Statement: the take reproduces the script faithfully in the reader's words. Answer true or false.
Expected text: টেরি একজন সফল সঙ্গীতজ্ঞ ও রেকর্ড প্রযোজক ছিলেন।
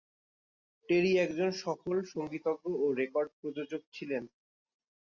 true